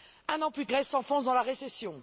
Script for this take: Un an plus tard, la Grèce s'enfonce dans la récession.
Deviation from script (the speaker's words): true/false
true